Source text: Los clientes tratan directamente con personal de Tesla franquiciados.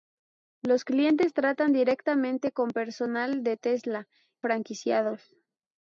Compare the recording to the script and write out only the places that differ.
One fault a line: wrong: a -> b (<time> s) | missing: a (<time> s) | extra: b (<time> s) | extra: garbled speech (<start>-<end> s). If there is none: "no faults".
no faults